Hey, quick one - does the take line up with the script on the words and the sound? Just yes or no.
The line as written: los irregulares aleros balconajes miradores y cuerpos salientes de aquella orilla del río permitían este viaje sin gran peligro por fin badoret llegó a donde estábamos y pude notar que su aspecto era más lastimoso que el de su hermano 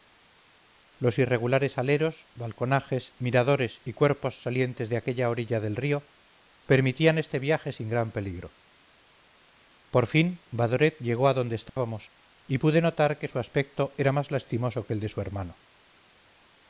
no